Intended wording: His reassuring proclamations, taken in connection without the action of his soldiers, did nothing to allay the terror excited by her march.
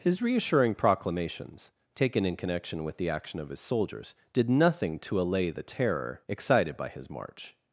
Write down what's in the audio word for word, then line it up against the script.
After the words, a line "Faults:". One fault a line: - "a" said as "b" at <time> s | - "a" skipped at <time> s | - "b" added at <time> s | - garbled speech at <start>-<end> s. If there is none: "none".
His reassuring proclamations, taken in connection with the action of his soldiers, did nothing to allay the terror excited by his march.
Faults:
- "without" said as "with" at 2.8 s
- "her" said as "his" at 6.9 s